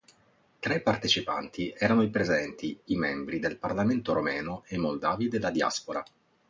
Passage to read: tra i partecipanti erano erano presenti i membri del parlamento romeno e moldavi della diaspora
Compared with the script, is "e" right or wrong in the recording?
right